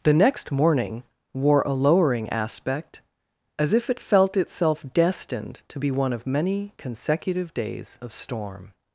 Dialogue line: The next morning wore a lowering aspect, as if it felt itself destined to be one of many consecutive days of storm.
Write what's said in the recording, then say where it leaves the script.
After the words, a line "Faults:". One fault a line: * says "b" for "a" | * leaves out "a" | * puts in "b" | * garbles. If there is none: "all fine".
The next morning wore a lowering aspect, as if it felt itself destined to be one of many consecutive days of storm.
Faults:
all fine